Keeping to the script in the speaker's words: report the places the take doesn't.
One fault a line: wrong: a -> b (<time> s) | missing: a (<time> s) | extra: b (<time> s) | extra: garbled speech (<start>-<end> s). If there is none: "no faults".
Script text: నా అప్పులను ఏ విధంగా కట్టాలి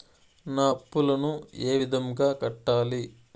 no faults